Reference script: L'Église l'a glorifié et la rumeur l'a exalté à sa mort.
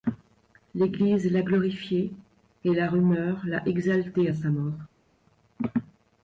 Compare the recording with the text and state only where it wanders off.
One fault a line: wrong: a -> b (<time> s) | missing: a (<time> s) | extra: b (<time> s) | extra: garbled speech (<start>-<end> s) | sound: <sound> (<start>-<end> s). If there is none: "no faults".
no faults